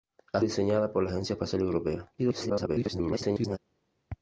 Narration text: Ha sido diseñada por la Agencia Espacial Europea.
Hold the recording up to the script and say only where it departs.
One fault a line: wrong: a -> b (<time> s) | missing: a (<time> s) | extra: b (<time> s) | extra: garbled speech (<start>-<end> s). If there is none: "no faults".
missing: sido (0.4 s)
extra: garbled speech (2.2-3.6 s)